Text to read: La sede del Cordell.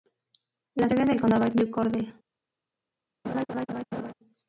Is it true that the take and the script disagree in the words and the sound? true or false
true